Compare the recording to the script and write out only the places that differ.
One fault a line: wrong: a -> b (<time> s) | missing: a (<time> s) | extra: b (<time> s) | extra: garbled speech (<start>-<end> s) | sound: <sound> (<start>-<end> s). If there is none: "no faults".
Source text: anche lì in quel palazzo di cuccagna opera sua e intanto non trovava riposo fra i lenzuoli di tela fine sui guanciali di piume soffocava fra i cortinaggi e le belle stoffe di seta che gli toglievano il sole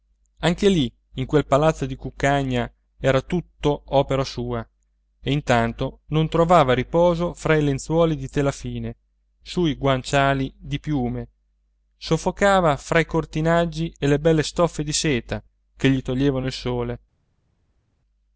extra: era tutto (3.0 s)